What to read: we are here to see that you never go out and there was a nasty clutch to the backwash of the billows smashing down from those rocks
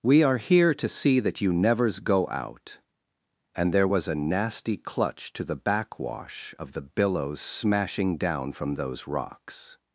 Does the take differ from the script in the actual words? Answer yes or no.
yes